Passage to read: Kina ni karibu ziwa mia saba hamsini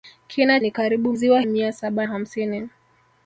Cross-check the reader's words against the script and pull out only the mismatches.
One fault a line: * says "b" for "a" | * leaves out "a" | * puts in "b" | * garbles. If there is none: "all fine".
all fine